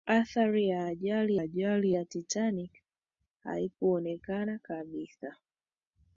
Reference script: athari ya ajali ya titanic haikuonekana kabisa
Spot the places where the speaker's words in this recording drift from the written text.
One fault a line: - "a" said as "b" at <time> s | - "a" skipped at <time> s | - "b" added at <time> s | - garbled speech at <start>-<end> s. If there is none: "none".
- "ajali" added at 1.4 s